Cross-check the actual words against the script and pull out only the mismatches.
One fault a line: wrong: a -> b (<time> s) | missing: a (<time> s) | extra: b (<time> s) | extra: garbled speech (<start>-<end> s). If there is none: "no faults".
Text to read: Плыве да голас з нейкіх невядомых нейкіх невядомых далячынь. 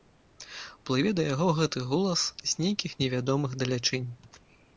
extra: яго гэты (1.3 s)
missing: нейкіх невядомых (3.5 s)